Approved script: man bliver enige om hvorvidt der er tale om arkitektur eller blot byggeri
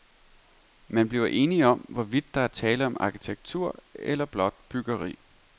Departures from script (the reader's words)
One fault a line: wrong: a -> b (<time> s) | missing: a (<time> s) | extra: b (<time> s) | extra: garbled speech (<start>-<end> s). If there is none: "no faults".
no faults